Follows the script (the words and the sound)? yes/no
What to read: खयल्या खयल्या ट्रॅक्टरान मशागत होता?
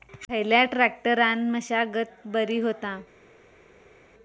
no